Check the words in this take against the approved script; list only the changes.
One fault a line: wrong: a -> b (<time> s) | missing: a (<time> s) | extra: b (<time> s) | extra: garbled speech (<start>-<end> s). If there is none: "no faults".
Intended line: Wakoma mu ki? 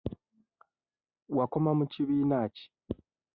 extra: kibiina (1.9 s)